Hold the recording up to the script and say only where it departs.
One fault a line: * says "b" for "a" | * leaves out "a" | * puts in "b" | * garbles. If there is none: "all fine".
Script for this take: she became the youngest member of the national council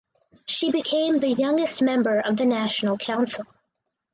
all fine